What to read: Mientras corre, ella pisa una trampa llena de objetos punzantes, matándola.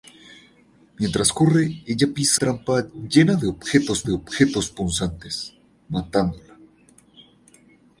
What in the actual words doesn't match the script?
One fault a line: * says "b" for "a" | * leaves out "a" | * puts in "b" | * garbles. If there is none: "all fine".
* leaves out "una"
* puts in "de objetos"